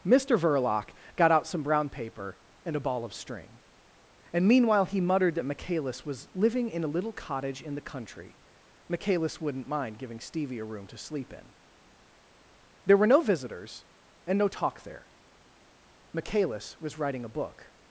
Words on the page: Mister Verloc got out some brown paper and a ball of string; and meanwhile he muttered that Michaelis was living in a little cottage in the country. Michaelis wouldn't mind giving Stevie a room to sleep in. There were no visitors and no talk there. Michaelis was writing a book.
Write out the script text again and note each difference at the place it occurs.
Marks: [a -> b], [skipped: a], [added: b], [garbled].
Mister Verloc got out some brown paper and a ball of string; and meanwhile he muttered that Michaelis was living in a little cottage in the country. Michaelis wouldn't mind giving Stevie a room to sleep in. There were no visitors and no talk there. Michaelis was writing a book.